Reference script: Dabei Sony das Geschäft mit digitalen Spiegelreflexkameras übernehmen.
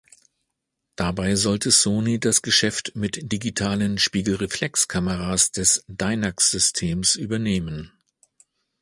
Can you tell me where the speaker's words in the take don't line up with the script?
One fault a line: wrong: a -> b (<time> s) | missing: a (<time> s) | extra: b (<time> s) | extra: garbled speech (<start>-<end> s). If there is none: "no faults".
extra: sollte (1.4 s)
extra: des Dynax Systems (5.5 s)